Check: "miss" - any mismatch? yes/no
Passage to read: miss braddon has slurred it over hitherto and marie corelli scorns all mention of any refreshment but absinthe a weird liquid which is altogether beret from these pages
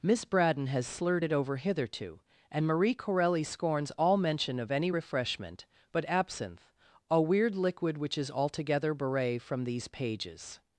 no